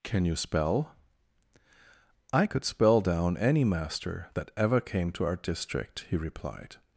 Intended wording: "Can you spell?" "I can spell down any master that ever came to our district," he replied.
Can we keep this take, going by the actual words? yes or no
no